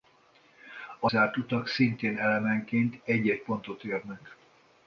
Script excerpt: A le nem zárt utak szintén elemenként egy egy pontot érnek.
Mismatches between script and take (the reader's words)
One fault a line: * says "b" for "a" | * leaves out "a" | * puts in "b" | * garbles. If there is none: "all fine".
* leaves out "le nem"